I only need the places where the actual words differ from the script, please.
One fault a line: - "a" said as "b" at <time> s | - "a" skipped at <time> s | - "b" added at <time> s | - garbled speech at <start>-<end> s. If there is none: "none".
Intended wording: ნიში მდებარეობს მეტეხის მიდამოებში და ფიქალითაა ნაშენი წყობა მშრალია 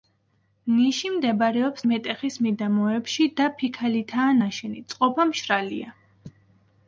none